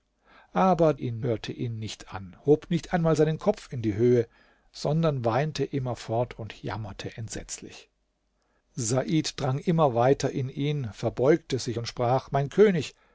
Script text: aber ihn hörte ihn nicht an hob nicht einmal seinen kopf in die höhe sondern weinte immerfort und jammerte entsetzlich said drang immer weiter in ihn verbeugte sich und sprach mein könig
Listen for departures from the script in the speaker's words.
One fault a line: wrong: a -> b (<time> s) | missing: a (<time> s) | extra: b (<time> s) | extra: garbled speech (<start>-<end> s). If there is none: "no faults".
no faults